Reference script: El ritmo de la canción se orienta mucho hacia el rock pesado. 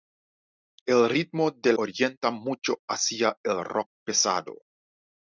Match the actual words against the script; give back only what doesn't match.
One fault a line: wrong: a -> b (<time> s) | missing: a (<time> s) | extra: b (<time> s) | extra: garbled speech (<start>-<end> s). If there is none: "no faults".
missing: la canción se (1.7 s)